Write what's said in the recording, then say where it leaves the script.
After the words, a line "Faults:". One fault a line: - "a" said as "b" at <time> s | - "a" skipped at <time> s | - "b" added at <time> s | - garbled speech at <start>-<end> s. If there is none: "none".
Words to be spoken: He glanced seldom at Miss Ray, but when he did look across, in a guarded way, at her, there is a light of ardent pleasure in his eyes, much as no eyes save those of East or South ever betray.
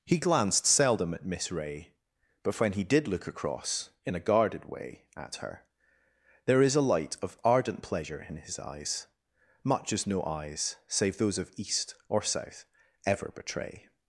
He glanced seldom at Miss Ray, but when he did look across, in a guarded way, at her, there is a light of ardent pleasure in his eyes, much as no eyes save those of East or South ever betray.
Faults:
none